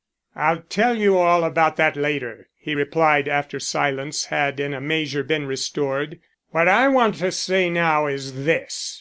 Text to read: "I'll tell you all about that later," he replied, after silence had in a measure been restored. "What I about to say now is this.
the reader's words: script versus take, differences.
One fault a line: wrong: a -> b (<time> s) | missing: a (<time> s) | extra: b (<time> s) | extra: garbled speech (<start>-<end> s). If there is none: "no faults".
wrong: about -> want (6.9 s)